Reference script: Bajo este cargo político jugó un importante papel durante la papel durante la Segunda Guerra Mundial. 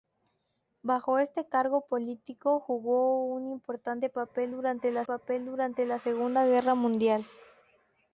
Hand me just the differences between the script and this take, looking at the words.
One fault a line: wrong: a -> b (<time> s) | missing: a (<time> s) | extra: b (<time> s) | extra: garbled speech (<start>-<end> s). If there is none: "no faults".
no faults